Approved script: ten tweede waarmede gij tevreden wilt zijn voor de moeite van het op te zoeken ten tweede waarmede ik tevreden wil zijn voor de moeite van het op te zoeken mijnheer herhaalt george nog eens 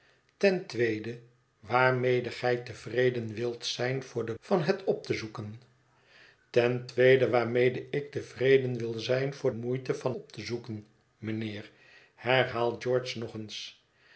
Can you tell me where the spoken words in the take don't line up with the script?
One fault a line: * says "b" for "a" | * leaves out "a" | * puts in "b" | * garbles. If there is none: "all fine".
* leaves out "moeite"
* leaves out "de"
* leaves out "het"